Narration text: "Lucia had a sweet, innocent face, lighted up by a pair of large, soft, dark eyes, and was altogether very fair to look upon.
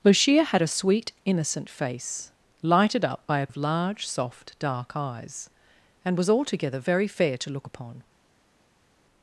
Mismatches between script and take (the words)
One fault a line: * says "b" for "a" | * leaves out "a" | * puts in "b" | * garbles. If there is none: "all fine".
* leaves out "pair"